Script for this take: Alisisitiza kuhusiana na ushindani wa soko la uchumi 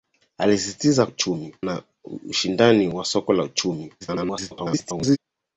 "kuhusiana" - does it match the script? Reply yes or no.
no